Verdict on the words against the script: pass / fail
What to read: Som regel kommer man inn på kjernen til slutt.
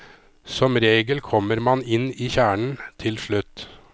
fail